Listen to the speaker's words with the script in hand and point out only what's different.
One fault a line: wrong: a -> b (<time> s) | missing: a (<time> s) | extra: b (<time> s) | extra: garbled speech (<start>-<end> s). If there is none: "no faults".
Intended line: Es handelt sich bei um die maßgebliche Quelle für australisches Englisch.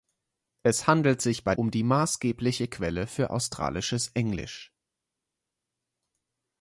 no faults